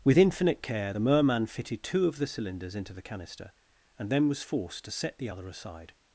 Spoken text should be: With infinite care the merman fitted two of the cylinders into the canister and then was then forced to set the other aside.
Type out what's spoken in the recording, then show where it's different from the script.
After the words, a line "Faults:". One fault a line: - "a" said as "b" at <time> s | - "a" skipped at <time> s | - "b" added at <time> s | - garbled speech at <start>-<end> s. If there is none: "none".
With infinite care the merman fitted two of the cylinders into the canister and then was forced to set the other aside.
Faults:
- "then" skipped at 4.4 s